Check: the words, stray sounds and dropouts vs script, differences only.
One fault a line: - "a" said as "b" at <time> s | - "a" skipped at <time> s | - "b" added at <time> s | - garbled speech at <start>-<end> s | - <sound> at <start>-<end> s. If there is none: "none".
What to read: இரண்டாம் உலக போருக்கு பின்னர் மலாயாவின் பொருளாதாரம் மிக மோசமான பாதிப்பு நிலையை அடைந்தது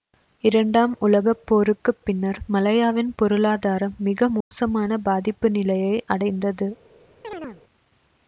- dropout at 4.4-4.5 s
- chirp at 7.2-7.6 s